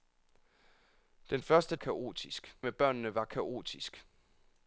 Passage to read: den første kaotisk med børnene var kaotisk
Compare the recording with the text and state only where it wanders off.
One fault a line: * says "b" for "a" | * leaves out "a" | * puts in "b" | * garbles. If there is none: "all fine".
all fine